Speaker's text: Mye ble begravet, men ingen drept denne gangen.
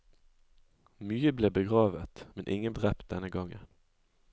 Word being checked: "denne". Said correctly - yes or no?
yes